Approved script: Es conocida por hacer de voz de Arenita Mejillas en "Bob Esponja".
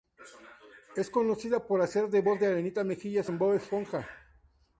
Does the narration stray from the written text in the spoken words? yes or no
no